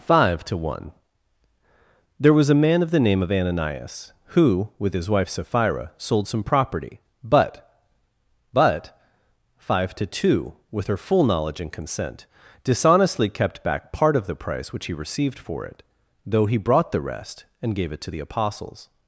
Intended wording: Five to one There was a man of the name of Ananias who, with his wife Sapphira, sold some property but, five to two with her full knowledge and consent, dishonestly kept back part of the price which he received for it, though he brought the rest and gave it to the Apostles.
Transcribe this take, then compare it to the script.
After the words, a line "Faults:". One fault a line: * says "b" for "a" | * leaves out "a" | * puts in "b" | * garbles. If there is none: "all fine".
Five to one There was a man of the name of Ananias who, with his wife Sapphira, sold some property but but, five to two with her full knowledge and consent, dishonestly kept back part of the price which he received for it, though he brought the rest and gave it to the Apostles.
Faults:
* puts in "but"